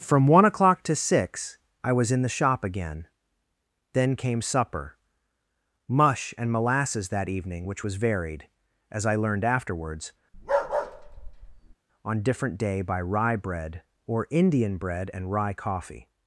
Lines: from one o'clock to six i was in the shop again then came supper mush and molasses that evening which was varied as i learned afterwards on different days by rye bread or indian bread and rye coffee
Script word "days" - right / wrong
wrong